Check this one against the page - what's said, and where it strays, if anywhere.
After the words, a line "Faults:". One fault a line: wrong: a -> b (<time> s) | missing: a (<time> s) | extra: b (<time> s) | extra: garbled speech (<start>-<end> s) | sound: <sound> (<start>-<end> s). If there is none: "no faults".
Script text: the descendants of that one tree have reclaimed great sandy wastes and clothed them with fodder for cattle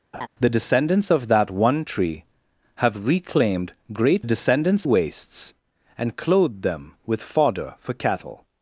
the descendants of that one tree have reclaimed great descendants wastes and clothed them with fodder for cattle
Faults:
sound: laugh (0.1-0.3 s)
wrong: sandy -> descendants (4.2 s)